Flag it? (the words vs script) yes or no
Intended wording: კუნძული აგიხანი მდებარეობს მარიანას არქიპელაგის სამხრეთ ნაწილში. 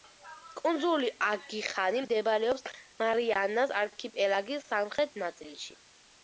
no